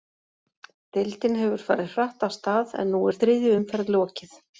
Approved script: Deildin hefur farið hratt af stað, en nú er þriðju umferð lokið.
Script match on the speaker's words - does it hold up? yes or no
yes